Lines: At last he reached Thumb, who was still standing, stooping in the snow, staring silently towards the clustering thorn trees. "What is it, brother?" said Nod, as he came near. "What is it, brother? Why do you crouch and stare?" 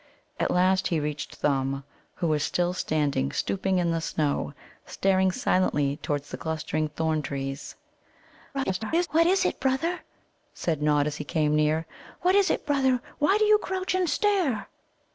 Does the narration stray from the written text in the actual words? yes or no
yes